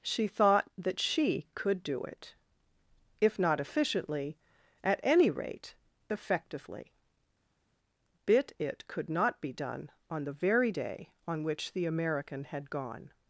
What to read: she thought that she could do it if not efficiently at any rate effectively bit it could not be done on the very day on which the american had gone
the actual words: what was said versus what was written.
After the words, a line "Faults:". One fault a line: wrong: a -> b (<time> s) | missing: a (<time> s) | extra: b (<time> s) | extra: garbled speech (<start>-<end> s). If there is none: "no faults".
she thought that she could do it if not efficiently at any rate effectively bit it could not be done on the very day on which the american had gone
Faults:
no faults